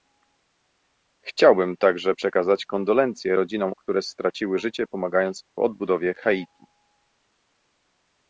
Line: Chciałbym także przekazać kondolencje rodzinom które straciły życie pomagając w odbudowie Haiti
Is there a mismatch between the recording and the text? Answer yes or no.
no